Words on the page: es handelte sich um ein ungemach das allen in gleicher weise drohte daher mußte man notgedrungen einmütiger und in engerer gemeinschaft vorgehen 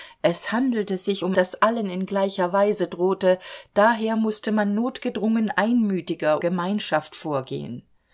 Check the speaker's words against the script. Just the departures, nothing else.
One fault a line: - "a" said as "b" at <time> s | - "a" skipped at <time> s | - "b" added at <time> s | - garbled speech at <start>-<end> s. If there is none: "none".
- "ein ungemach" skipped at 1.4 s
- "und in engerer" skipped at 6.4 s